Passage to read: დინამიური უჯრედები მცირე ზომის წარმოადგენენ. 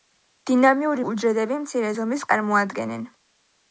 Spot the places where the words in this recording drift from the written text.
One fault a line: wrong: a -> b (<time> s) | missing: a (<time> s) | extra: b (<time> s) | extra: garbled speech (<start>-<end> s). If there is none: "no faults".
no faults